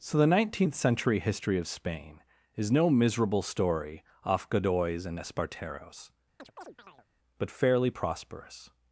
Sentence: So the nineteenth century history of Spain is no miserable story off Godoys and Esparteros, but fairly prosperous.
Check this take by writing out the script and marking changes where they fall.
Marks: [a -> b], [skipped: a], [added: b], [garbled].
So the nineteenth century history of Spain is no miserable story off Godoys and Esparteros, but fairly prosperous.